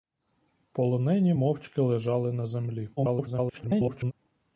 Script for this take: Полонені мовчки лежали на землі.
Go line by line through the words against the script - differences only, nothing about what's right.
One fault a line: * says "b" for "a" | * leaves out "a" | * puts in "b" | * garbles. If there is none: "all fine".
* garbles